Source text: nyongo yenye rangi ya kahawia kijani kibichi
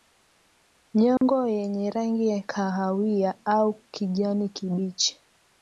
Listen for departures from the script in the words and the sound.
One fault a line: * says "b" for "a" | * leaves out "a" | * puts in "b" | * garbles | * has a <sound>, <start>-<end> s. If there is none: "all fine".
* has a dropout, 1.2-1.2 s
* puts in "au"